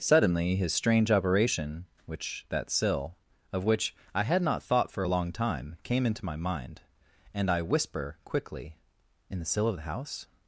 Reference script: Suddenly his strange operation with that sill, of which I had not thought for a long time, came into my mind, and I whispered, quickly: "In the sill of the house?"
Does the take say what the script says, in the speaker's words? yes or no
no